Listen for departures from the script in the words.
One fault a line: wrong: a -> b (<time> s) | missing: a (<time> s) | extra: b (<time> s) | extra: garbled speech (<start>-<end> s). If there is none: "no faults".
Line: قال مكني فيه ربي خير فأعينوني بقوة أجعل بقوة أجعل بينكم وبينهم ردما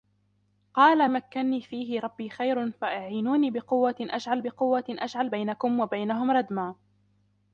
no faults